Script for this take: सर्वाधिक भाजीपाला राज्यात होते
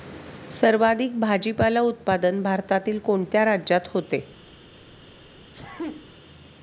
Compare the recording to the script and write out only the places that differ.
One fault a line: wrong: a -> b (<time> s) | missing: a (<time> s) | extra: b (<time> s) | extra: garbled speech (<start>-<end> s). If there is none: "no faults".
extra: उत्पादन भारतातील कोणत्या (1.8 s)